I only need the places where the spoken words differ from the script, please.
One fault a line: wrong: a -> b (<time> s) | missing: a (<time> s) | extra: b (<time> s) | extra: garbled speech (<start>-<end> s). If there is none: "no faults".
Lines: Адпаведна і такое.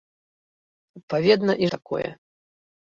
no faults